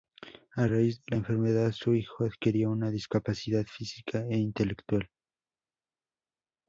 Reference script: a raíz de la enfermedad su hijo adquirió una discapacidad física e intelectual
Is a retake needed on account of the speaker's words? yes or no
no